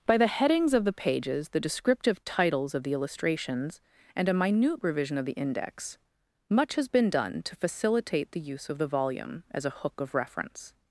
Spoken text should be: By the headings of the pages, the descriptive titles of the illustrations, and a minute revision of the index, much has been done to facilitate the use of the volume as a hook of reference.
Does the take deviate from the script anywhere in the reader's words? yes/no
no